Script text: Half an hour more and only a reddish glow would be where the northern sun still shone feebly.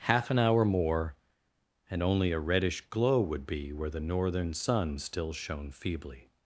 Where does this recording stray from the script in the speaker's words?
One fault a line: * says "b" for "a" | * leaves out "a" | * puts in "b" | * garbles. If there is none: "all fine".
all fine